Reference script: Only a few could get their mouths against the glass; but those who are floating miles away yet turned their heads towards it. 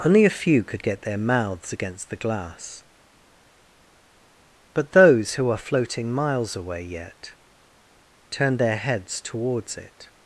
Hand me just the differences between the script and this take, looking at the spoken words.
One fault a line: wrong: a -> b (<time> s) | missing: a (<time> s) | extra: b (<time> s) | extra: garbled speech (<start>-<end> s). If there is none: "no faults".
no faults